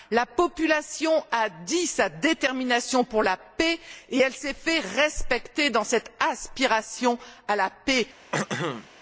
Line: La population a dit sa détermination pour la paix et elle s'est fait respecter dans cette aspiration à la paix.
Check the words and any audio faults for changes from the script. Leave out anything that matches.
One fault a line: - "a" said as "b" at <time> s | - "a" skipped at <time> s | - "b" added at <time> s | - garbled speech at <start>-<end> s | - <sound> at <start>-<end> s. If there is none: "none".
- throat clearing at 8.3-8.9 s